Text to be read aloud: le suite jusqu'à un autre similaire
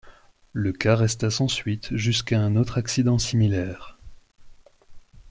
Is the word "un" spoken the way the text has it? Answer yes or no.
yes